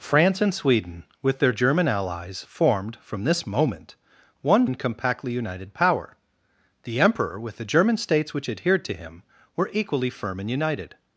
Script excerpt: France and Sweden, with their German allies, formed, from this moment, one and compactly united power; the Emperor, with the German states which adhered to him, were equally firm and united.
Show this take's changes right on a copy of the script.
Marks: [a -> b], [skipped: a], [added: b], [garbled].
France and Sweden, with their German allies, formed, from this moment, one and compactly united power; the Emperor, with the German states which adhered to him, were equally firm and united.